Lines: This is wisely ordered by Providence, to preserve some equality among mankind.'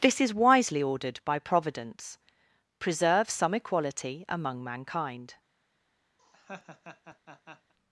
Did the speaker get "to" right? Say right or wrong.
wrong